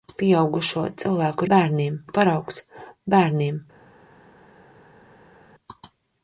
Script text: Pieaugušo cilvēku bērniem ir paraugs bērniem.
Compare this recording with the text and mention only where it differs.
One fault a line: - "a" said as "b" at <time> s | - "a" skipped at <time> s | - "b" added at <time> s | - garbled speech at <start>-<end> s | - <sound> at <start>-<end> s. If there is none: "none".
none